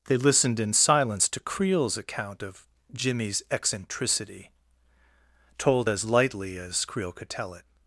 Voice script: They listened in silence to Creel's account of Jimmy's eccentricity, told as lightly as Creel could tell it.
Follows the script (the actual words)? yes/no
yes